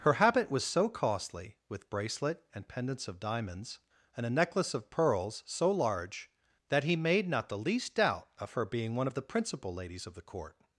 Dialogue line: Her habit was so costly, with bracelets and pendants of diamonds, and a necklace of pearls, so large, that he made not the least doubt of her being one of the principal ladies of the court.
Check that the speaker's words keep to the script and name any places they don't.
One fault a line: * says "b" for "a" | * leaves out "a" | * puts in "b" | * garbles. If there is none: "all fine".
* says "bracelet" for "bracelets"